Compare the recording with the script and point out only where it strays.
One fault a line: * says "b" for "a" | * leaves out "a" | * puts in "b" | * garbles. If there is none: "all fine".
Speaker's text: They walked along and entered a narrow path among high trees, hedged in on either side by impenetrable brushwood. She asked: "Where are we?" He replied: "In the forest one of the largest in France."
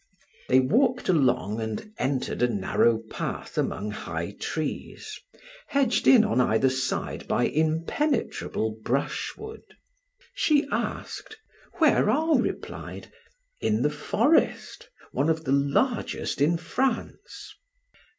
* leaves out "we He"